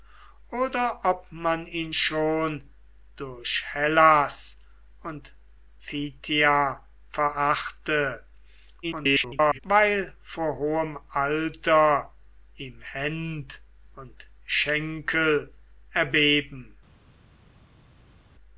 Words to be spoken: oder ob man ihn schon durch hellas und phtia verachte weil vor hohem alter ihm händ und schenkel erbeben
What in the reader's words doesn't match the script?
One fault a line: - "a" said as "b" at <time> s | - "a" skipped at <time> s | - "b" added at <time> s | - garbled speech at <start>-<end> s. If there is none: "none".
- garbled speech at 8.8-9.6 s